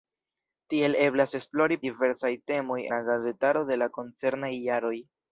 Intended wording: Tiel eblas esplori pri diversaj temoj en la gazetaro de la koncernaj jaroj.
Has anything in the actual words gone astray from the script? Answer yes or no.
yes